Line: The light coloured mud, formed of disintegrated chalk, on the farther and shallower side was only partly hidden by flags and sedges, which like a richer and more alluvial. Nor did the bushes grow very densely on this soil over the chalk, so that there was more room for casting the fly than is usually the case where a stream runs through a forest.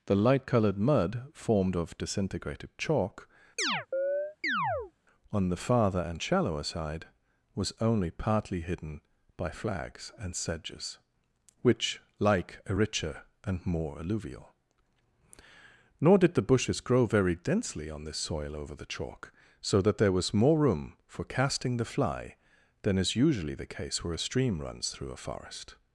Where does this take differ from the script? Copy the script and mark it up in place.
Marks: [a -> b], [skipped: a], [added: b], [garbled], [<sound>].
The light coloured mud, formed of disintegrated chalk, [chirp] on the farther and shallower side was only partly hidden by flags and sedges, which like a richer and more alluvial. Nor did the bushes grow very densely on this soil over the chalk, so that there was more room for casting the fly than is usually the case where a stream runs through a forest.